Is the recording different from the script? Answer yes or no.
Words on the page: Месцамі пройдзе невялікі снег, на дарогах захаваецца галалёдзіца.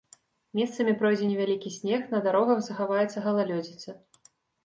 no